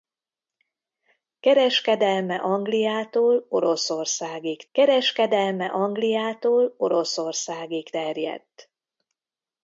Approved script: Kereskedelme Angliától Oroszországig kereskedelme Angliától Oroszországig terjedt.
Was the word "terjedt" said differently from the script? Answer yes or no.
no